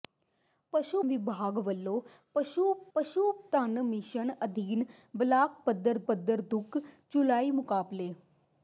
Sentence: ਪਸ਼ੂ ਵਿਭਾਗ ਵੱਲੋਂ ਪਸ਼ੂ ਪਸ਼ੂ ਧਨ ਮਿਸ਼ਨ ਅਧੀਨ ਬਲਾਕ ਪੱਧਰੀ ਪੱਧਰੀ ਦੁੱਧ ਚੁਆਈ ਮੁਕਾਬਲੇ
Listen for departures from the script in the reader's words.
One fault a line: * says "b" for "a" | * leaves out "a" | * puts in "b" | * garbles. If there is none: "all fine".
all fine